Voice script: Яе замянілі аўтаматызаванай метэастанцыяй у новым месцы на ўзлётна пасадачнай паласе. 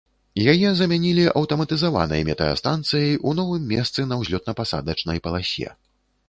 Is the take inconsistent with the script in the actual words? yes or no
no